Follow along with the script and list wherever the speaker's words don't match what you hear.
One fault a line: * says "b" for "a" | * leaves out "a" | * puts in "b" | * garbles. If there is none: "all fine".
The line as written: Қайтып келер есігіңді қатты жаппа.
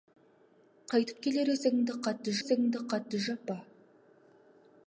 * puts in "есігіңді қатты"